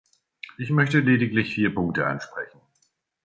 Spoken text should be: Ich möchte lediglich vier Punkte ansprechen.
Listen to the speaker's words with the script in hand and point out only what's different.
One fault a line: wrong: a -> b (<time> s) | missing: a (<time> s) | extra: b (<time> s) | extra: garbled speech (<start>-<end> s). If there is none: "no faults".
no faults